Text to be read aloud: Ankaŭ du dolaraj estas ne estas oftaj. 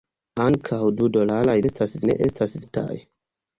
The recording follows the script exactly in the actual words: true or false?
true